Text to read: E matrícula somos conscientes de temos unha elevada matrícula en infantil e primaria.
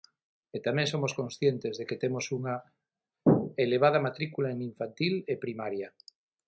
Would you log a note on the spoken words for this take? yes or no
yes